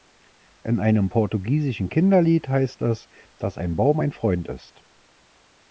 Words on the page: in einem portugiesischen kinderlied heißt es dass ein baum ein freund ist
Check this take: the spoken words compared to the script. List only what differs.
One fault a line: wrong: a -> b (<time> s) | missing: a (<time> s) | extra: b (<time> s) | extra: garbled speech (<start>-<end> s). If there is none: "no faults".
no faults